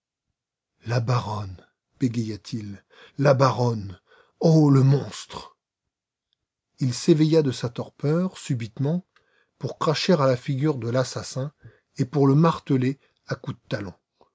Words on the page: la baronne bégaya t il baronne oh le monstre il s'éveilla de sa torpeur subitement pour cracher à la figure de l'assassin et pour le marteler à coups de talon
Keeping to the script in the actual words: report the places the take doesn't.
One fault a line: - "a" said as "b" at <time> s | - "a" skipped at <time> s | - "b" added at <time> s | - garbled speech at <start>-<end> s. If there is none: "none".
- "la" added at 3.2 s